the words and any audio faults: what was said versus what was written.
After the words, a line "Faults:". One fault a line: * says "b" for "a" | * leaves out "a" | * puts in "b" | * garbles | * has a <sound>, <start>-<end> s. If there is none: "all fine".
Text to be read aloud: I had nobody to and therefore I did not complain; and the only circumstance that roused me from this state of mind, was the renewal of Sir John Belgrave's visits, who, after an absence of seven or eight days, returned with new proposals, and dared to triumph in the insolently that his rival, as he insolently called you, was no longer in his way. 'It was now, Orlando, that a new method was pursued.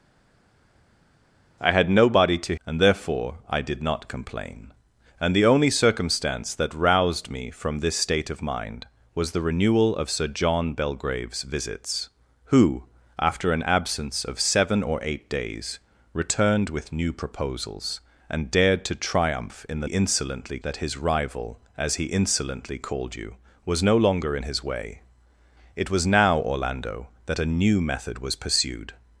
I had nobody to and therefore I did not complain; and the only circumstance that roused me from this state of mind, was the renewal of Sir John Belgrave's visits, who, after an absence of seven or eight days, returned with new proposals, and dared to triumph in the insolently that his rival, as he insolently called you, was no longer in his way. 'It was now, Orlando, that a new method was pursued.
Faults:
all fine